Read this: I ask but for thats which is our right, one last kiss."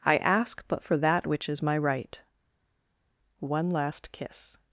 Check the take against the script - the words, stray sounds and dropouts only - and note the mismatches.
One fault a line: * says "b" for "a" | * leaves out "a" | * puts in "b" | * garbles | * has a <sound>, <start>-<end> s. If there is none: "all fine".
* says "that" for "thats"
* says "my" for "our"